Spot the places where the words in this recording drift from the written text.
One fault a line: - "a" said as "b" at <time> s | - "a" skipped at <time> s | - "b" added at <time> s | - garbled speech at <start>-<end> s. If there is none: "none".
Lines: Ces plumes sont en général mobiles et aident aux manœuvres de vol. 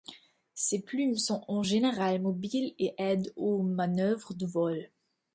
none